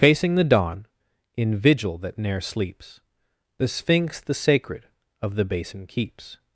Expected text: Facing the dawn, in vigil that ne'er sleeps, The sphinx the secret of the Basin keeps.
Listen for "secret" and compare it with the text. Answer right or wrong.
wrong